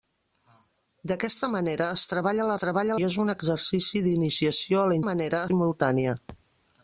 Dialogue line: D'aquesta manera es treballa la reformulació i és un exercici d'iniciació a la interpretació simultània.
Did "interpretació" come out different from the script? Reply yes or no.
yes